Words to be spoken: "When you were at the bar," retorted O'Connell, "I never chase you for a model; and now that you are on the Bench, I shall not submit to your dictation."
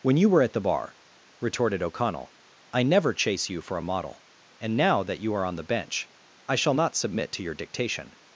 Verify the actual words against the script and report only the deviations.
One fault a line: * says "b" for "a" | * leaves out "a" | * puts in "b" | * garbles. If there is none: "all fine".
all fine